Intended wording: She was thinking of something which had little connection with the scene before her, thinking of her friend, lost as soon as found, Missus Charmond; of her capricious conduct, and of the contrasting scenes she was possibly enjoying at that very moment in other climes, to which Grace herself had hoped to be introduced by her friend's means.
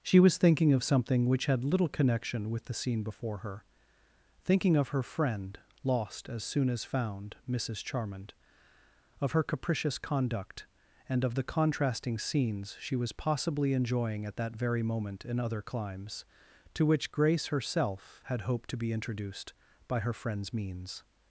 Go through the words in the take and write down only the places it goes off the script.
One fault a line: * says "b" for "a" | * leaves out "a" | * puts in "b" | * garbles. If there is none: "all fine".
all fine